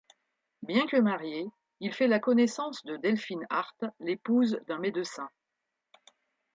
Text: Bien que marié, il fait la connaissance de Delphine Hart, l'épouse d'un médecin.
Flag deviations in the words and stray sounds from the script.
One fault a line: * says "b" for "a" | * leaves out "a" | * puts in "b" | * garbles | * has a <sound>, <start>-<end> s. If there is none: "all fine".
all fine